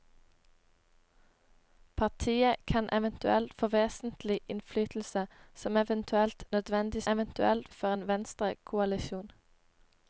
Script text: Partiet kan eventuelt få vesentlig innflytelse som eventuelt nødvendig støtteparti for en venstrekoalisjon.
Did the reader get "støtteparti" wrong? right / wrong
wrong